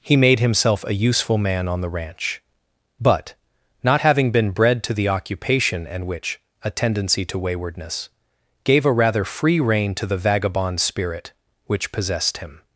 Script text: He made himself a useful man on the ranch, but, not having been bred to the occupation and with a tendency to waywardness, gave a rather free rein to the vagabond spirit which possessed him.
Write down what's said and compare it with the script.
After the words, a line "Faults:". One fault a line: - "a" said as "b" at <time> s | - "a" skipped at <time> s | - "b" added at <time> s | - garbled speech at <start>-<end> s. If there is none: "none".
He made himself a useful man on the ranch, but, not having been bred to the occupation and which a tendency to waywardness, gave a rather free rein to the vagabond spirit which possessed him.
Faults:
- "with" said as "which" at 6.1 s